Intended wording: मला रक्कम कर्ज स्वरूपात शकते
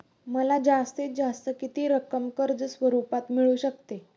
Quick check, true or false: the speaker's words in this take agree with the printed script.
false